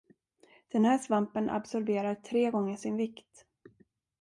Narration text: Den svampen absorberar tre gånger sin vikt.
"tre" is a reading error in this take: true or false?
false